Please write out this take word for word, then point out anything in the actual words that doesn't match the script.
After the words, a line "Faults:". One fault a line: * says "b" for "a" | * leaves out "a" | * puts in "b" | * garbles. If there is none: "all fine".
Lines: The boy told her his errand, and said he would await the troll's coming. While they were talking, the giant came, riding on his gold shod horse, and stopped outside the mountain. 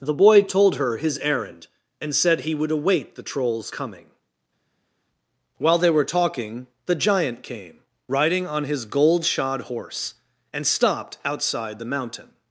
The boy told her his errand, and said he would await the troll's coming. While they were talking, the giant came, riding on his gold shod horse, and stopped outside the mountain.
Faults:
all fine